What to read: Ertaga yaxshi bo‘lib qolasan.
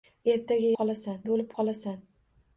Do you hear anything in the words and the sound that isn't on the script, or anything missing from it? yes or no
yes